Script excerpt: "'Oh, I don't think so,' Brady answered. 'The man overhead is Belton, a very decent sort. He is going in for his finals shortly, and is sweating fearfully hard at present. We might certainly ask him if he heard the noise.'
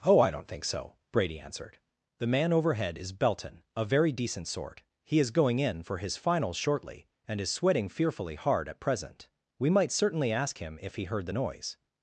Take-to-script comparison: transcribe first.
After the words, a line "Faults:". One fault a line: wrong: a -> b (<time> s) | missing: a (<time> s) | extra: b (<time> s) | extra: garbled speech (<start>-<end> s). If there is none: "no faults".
"'Oh, I don't think so,' Brady answered. 'The man overhead is Belton, a very decent sort. He is going in for his finals shortly, and is sweating fearfully hard at present. We might certainly ask him if he heard the noise.'
Faults:
no faults